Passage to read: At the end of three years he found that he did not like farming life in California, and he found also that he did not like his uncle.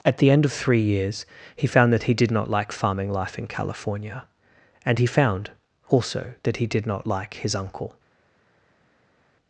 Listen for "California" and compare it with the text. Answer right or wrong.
right